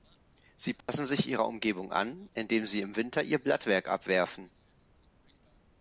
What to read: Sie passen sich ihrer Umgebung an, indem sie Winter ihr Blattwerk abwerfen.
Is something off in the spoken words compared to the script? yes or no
yes